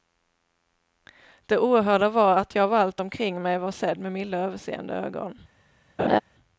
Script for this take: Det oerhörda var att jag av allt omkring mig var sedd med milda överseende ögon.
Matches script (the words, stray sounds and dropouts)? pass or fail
fail